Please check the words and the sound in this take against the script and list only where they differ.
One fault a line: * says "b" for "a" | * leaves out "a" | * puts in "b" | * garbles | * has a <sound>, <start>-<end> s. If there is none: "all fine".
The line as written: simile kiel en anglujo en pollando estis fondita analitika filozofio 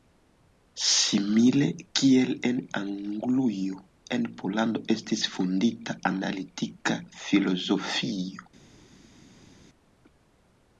all fine